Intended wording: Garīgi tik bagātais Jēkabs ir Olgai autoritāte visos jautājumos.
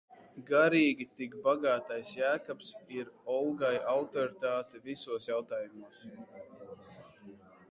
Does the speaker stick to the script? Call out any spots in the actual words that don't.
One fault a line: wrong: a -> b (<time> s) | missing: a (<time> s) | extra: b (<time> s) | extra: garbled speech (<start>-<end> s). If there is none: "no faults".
no faults